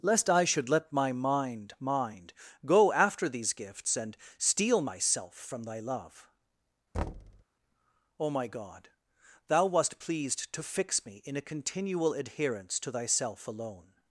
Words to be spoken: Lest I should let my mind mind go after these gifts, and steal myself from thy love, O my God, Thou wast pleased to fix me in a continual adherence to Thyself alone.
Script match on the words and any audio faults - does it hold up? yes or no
no